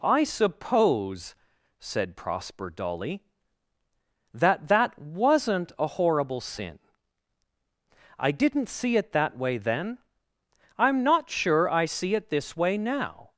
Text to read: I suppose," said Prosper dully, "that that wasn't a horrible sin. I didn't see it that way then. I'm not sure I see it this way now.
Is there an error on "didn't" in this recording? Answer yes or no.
no